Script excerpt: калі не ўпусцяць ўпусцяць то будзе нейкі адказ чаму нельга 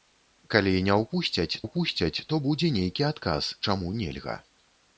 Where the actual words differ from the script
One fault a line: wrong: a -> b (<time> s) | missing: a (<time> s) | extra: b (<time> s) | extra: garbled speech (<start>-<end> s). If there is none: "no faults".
no faults